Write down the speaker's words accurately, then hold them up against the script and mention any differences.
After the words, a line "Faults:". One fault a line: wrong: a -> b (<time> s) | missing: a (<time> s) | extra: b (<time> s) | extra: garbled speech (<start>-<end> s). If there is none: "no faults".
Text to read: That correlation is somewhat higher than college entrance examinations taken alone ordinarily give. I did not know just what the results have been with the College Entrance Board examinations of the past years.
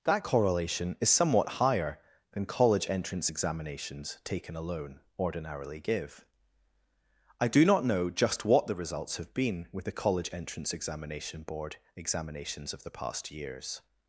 That correlation is somewhat higher than college entrance examinations taken alone ordinarily give. I do not know just what the results have been with the College Entrance Examination Board examinations of the past years.
Faults:
wrong: did -> do (7.5 s)
extra: Examination (10.7 s)